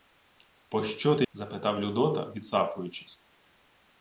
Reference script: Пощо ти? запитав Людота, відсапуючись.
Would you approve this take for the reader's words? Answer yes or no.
yes